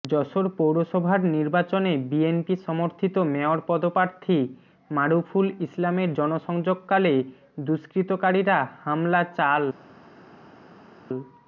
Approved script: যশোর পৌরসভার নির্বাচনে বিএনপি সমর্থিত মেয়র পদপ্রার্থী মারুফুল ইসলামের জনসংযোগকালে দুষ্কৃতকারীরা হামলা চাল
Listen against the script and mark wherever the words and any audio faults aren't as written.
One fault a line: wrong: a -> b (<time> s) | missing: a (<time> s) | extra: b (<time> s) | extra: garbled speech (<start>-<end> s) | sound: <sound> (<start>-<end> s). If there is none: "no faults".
no faults